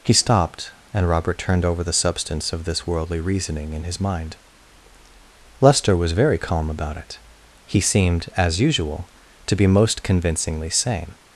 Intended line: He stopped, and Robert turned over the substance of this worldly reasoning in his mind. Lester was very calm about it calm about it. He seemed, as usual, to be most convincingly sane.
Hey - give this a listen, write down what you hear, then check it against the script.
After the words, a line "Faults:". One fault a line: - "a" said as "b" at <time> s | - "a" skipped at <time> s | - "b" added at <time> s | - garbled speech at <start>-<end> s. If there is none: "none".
He stopped, and Robert turned over the substance of this worldly reasoning in his mind. Lester was very calm about it. He seemed, as usual, to be most convincingly sane.
Faults:
- "calm about it" skipped at 7.2 s